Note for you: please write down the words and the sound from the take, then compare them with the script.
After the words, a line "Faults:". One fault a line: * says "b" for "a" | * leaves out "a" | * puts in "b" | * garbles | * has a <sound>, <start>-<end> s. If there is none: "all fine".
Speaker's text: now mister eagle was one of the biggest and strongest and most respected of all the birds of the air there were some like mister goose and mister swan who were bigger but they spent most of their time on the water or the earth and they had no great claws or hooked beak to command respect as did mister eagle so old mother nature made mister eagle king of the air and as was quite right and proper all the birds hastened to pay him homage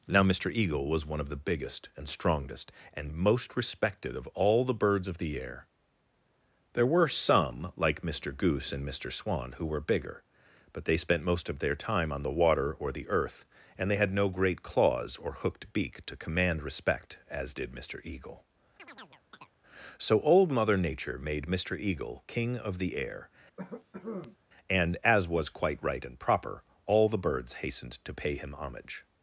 now mister eagle was one of the biggest and strongest and most respected of all the birds of the air there were some like mister goose and mister swan who were bigger but they spent most of their time on the water or the earth and they had no great claws or hooked beak to command respect as did mister eagle so old mother nature made mister eagle king of the air and as was quite right and proper all the birds hastened to pay him homage
Faults:
* has a chirp, 18.8-19.5 s
* has a cough, 23.6-24.4 s